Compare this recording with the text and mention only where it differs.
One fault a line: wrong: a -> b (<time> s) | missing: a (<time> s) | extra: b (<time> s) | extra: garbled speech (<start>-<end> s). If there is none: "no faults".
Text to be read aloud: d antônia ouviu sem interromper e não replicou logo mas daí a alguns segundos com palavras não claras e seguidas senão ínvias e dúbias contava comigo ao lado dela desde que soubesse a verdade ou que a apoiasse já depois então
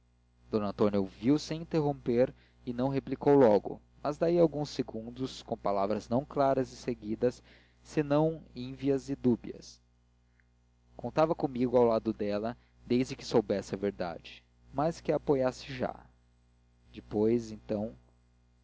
wrong: ou -> mas (14.7 s)